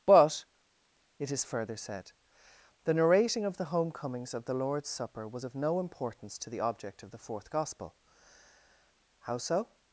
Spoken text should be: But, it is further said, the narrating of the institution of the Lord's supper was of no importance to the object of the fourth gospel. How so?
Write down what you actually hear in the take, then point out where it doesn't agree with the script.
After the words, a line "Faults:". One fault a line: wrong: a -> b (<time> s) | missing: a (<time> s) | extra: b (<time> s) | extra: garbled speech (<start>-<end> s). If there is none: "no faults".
But, it is further said, the narrating of the homecomings of the Lord's supper was of no importance to the object of the fourth gospel. How so?
Faults:
wrong: institution -> homecomings (3.6 s)